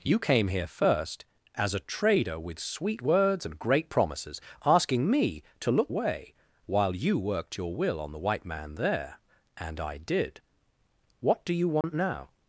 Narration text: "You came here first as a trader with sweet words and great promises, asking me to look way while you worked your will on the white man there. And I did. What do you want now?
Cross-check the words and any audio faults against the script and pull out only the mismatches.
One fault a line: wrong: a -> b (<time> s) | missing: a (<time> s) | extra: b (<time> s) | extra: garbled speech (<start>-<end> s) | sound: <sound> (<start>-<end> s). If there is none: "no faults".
sound: dropout (11.8-11.8 s)